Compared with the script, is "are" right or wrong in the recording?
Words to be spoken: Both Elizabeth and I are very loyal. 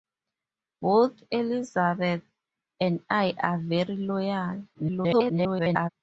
right